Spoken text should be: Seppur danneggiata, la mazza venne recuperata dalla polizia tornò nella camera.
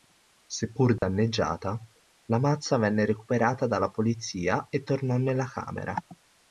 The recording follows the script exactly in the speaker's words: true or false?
false